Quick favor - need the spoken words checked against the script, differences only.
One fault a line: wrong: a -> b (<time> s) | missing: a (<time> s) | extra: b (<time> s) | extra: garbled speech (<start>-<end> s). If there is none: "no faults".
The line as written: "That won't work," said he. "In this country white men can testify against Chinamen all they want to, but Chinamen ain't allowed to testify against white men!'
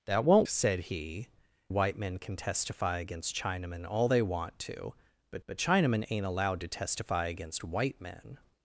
missing: work (0.5 s)
missing: In this country (1.3 s)
extra: but (5.5 s)